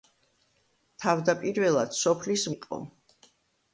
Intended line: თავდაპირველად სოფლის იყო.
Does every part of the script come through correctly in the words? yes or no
yes